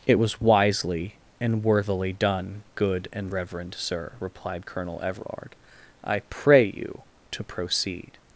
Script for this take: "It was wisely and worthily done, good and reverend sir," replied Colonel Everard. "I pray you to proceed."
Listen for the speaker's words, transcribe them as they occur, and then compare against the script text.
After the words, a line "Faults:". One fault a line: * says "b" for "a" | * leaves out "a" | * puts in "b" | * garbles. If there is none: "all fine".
"It was wisely and worthily done, good and reverend sir," replied Colonel Everard. "I pray you to proceed."
Faults:
all fine